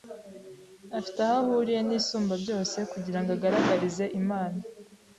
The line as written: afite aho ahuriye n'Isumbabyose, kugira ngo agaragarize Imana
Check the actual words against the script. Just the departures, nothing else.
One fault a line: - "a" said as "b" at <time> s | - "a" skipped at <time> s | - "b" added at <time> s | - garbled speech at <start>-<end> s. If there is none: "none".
none